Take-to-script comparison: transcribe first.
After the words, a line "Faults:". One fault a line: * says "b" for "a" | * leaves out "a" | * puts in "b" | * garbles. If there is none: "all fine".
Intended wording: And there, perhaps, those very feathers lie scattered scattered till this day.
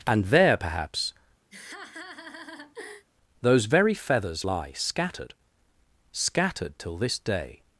And there, perhaps, those very feathers lie scattered scattered till this day.
Faults:
all fine